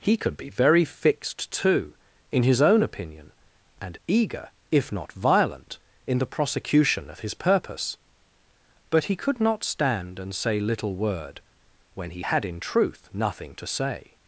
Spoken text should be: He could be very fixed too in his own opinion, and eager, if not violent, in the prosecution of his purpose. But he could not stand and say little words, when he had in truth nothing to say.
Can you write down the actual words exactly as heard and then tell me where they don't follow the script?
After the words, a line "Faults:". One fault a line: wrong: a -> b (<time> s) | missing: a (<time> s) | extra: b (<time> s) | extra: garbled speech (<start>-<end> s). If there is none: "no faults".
He could be very fixed too in his own opinion, and eager, if not violent, in the prosecution of his purpose. But he could not stand and say little word, when he had in truth nothing to say.
Faults:
wrong: words -> word (10.9 s)